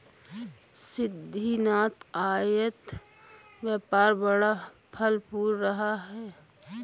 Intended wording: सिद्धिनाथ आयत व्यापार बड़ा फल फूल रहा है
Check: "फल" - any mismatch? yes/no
no